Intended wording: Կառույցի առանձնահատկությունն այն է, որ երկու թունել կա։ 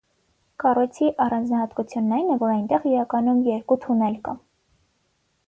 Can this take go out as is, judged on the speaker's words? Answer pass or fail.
fail